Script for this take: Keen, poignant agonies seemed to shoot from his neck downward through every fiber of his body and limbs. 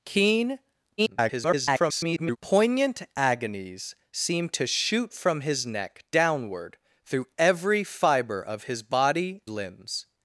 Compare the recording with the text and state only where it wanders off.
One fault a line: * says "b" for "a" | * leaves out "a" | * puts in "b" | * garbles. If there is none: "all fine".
* garbles
* leaves out "and"